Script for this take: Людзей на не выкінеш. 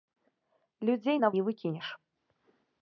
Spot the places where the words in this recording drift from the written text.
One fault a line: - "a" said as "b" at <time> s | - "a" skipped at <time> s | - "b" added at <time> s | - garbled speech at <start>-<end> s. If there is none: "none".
none